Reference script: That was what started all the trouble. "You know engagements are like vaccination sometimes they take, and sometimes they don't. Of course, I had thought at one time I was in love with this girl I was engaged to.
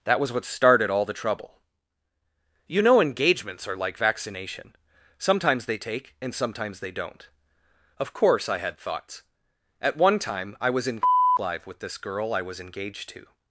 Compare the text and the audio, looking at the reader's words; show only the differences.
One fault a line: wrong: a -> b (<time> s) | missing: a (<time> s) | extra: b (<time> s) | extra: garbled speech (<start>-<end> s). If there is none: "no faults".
wrong: thought -> thoughts (8.8 s)
wrong: love -> live (11.4 s)